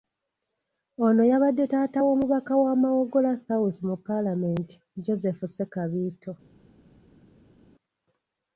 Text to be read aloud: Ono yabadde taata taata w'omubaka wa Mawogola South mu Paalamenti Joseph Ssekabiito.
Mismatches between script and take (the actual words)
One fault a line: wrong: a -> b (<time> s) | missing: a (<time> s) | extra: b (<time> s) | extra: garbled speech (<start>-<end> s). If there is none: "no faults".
missing: taata (2.0 s)